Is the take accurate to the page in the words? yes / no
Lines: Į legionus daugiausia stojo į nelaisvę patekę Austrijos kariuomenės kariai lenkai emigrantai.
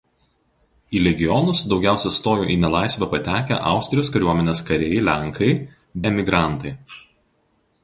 yes